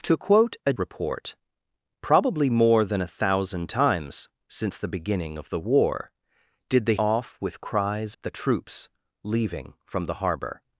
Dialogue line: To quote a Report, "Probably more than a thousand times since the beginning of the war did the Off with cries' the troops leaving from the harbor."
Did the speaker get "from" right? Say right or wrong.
right